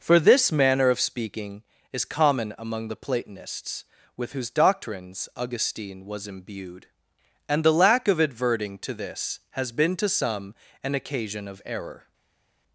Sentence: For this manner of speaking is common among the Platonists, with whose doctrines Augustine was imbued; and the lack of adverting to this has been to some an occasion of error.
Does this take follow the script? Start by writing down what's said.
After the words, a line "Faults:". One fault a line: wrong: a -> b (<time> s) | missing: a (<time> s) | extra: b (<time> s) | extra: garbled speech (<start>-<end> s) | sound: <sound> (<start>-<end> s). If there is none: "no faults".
For this manner of speaking is common among the Platonists, with whose doctrines Augustine was imbued; and the lack of adverting to this has been to some an occasion of error.
Faults:
no faults